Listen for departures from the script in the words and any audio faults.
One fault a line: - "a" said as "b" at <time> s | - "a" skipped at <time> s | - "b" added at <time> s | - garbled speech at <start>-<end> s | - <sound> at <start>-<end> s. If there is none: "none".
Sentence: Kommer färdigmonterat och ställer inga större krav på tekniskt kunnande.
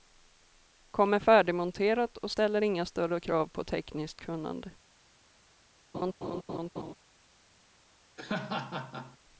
- laugh at 5.9-6.9 s
- laugh at 8.2-9.2 s